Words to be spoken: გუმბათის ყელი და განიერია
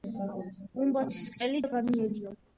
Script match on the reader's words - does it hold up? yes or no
yes